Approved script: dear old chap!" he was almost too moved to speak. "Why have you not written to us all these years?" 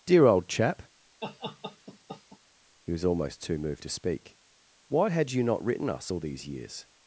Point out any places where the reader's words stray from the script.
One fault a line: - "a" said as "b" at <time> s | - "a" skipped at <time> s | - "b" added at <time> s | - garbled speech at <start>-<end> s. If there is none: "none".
- "have" said as "had" at 5.1 s
- "to" skipped at 5.9 s